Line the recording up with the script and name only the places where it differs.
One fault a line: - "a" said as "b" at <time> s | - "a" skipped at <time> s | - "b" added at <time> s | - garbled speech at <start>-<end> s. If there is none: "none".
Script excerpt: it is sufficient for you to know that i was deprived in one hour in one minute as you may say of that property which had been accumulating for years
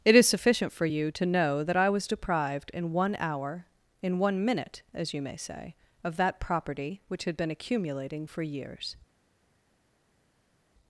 none